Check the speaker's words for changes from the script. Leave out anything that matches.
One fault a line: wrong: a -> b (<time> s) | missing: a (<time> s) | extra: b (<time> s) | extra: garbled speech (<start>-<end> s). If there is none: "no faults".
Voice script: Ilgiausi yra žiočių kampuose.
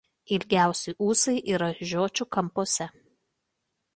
extra: ūsai (1.1 s)